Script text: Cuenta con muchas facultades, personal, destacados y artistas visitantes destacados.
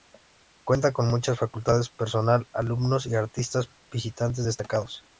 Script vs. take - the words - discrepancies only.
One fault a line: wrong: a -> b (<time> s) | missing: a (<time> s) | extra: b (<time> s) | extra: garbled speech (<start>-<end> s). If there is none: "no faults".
wrong: destacados -> alumnos (2.5 s)